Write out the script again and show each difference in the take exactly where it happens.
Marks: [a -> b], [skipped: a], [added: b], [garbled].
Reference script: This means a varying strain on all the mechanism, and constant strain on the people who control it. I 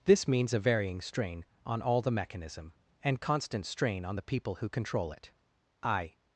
This means a varying strain on all the mechanism, and constant strain on the people who control it. I